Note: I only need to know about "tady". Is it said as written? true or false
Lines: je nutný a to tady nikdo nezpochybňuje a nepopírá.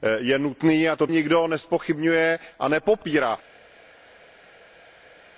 false